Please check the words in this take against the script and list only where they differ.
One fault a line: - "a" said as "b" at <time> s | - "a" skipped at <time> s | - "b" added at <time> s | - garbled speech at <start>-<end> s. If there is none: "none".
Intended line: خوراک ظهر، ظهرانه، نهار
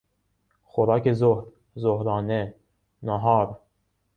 none